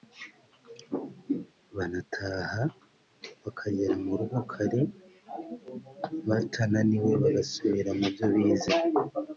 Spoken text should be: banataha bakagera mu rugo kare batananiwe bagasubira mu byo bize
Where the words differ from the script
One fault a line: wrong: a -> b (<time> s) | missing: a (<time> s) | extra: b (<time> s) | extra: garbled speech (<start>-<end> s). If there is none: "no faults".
no faults